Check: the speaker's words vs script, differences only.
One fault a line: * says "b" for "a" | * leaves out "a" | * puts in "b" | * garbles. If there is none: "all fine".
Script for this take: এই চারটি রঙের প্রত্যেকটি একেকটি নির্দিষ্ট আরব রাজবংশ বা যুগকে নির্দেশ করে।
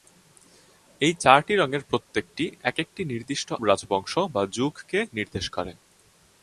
* leaves out "আরব"